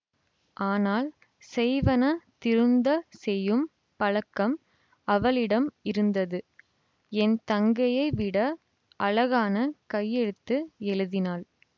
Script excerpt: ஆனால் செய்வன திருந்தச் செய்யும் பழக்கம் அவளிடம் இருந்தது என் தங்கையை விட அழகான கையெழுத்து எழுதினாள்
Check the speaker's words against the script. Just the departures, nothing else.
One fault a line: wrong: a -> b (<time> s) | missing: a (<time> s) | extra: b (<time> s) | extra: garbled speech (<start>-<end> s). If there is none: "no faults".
no faults